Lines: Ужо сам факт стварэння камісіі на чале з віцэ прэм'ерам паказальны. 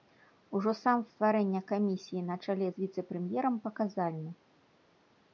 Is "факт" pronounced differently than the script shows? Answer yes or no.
yes